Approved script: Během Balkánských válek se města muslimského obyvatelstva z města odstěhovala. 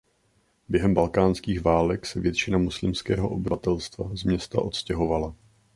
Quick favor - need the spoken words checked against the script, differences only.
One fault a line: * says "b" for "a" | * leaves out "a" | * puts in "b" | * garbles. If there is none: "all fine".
* says "většina" for "města"